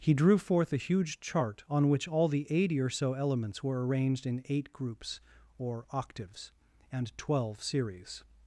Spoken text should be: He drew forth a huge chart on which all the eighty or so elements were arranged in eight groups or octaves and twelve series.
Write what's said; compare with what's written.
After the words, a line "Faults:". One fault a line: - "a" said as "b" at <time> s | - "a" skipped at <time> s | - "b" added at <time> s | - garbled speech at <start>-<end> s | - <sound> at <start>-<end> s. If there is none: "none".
He drew forth a huge chart on which all the eighty or so elements were arranged in eight groups or octaves and twelve series.
Faults:
none